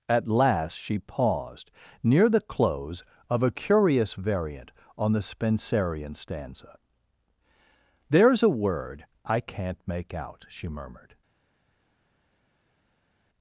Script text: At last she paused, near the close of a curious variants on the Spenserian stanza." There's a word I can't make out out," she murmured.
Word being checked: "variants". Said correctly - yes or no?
no